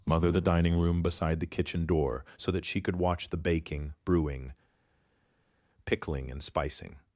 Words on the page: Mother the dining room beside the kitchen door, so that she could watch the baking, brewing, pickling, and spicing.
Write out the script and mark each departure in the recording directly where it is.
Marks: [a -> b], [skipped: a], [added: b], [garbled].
Mother the dining room beside the kitchen door, so that she could watch the baking, brewing, pickling, and spicing.